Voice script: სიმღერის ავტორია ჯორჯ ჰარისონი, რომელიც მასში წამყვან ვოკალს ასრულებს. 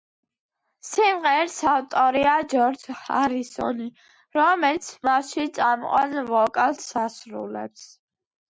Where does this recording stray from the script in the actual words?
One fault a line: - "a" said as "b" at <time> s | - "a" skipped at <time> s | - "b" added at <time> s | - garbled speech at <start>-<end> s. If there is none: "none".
none